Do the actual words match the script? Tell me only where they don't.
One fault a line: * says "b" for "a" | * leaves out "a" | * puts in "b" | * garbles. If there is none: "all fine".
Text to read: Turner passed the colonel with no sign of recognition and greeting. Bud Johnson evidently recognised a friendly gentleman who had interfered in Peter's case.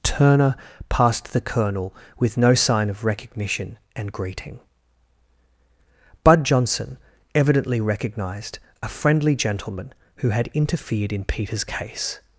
all fine